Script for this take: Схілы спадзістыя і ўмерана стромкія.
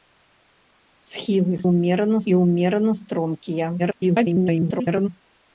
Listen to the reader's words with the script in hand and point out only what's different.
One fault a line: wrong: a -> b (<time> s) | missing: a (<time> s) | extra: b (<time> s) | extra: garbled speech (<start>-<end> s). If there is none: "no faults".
wrong: спадзістыя -> ўмерана (1.7 s)
extra: garbled speech (3.8-5.1 s)